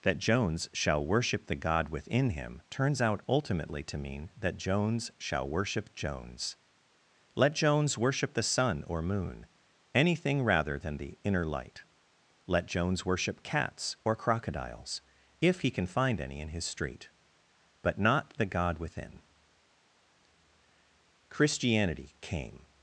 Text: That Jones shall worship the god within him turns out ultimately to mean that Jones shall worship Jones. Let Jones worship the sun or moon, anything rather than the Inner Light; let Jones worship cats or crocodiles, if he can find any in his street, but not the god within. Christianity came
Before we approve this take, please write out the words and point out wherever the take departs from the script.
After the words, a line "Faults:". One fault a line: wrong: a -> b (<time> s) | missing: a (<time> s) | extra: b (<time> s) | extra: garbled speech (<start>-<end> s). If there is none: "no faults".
That Jones shall worship the god within him turns out ultimately to mean that Jones shall worship Jones. Let Jones worship the sun or moon, anything rather than the Inner Light; let Jones worship cats or crocodiles, if he can find any in his street, but not the god within. Christianity came
Faults:
no faults